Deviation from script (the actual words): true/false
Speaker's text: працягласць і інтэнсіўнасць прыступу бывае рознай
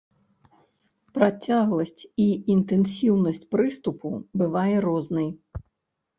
false